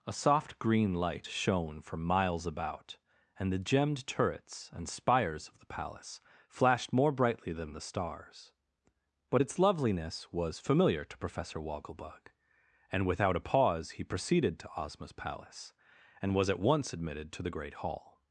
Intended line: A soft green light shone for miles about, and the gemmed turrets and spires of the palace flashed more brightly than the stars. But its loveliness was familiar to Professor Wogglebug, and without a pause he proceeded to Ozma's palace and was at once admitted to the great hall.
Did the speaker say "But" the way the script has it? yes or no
yes